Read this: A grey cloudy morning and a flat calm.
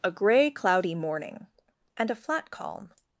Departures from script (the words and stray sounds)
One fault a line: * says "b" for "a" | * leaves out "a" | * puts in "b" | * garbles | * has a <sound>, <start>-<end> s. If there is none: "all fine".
all fine